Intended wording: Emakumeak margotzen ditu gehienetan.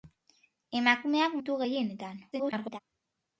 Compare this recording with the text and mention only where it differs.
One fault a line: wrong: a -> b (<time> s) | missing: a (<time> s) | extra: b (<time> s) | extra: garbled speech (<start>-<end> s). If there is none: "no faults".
missing: margotzen (1.4 s)
extra: garbled speech (2.3-2.8 s)